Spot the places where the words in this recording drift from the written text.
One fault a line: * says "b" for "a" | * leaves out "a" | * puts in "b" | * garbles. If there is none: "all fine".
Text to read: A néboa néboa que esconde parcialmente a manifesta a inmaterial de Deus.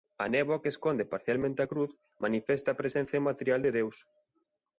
* leaves out "néboa"
* puts in "cruz"
* puts in "presenza"